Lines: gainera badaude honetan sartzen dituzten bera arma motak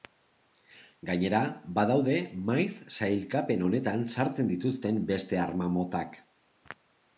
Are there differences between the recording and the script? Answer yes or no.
yes